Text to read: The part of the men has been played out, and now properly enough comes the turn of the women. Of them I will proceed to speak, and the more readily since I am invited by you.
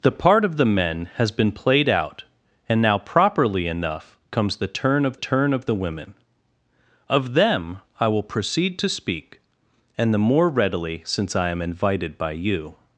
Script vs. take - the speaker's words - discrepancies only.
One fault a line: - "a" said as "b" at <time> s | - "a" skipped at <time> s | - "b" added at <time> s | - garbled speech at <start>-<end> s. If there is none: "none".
- "turn of" added at 5.1 s